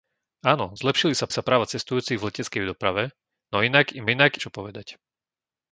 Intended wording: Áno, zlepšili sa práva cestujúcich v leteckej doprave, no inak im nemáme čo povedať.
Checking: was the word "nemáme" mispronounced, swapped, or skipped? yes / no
yes